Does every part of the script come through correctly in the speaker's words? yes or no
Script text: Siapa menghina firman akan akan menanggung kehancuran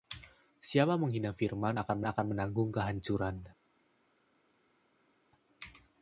yes